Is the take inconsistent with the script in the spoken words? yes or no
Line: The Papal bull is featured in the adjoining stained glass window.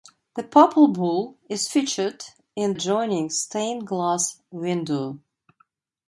yes